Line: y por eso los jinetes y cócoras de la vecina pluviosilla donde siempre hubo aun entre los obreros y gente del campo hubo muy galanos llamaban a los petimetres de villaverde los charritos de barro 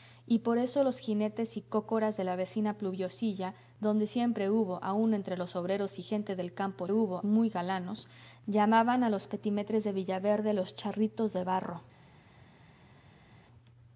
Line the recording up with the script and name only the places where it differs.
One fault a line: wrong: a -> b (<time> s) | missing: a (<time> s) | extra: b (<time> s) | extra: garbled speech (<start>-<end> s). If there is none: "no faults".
no faults